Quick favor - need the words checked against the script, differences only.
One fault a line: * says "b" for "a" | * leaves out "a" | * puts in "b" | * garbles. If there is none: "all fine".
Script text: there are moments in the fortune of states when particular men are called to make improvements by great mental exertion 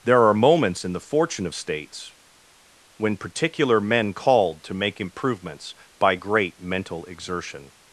* leaves out "are"